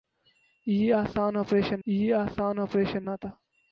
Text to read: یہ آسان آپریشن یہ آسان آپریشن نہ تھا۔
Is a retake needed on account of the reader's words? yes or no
no